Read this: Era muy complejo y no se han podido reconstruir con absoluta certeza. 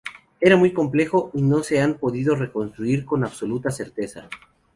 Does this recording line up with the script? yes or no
yes